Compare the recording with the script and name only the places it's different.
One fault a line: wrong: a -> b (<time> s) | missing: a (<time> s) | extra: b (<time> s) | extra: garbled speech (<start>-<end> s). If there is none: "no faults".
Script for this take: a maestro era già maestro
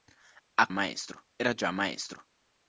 no faults